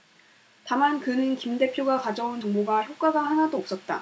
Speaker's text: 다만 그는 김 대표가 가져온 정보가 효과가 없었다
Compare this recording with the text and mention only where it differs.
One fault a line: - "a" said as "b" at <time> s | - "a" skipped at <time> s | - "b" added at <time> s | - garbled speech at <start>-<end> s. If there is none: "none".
- "하나도" added at 3.2 s